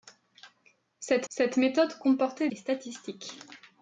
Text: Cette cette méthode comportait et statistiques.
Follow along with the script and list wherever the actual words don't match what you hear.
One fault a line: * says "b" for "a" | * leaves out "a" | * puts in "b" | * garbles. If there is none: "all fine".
all fine